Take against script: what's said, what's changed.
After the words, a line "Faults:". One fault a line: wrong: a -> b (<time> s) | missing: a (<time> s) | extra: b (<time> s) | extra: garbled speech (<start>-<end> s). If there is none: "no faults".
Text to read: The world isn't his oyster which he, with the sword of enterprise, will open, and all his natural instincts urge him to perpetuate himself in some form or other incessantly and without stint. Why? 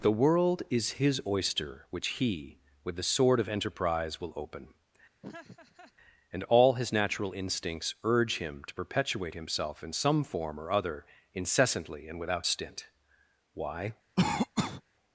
The world is his oyster which he, with the sword of enterprise, will open, and all his natural instincts urge him to perpetuate himself in some form or other incessantly and without stint. Why?
Faults:
wrong: isn't -> is (0.7 s)